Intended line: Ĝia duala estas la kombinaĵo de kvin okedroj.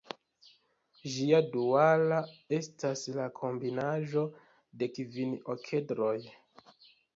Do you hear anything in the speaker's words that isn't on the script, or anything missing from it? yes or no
no